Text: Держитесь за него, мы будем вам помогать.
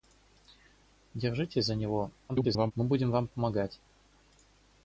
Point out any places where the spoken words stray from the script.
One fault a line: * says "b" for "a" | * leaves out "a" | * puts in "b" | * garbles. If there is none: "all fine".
* garbles